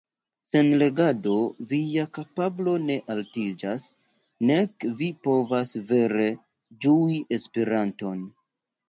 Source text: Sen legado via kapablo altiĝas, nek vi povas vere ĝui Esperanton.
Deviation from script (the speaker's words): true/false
true